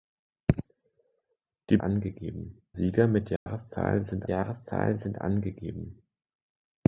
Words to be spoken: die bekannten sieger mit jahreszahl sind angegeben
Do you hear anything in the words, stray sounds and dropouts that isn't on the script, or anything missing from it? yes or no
yes